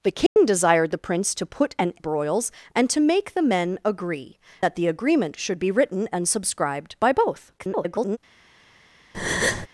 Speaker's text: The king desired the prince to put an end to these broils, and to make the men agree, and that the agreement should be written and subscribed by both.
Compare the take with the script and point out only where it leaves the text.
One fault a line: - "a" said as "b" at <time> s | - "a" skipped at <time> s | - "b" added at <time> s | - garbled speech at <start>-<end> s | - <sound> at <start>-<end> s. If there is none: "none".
- dropout at 0.3-0.4 s
- "end to these" skipped at 1.9 s
- "and" skipped at 4.4 s
- garbled speech at 7.6-8.2 s
- breath at 9.1-9.7 s